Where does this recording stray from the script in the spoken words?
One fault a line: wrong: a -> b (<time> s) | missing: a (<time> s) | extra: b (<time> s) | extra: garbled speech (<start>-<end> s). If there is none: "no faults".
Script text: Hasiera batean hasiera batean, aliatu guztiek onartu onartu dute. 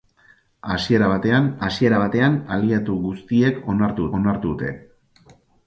no faults